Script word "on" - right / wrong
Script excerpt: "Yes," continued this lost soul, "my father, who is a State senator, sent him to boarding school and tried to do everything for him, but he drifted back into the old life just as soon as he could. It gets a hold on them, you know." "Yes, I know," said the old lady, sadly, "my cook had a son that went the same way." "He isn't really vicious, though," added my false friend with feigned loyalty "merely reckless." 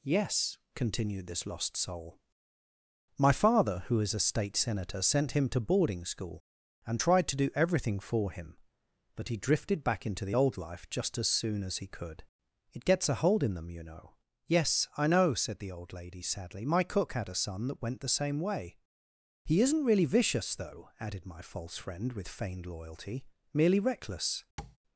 wrong